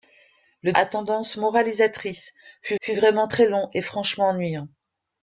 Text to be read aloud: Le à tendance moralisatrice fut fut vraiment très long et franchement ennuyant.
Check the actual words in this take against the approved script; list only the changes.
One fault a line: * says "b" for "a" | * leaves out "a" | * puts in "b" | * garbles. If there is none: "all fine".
all fine